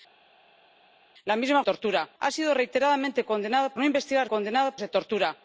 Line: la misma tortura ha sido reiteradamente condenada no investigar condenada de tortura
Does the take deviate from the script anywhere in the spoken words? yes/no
no